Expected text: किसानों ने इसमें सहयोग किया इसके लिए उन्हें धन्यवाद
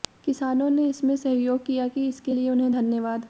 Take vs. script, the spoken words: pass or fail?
pass